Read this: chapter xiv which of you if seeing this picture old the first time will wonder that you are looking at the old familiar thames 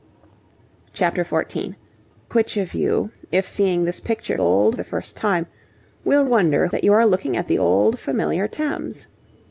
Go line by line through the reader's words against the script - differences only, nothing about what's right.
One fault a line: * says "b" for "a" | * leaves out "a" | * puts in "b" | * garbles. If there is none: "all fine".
all fine